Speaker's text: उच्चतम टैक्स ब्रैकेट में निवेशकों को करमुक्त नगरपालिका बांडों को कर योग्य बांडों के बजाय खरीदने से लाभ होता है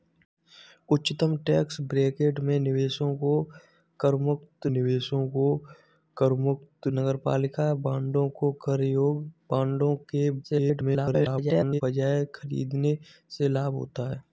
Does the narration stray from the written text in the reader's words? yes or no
yes